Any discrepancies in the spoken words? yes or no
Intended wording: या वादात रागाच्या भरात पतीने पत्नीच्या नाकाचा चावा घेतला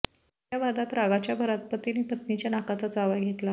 no